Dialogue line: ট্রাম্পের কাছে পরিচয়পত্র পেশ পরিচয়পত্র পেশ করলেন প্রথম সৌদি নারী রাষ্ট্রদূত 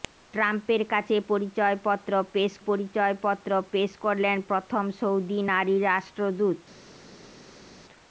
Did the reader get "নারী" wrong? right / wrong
right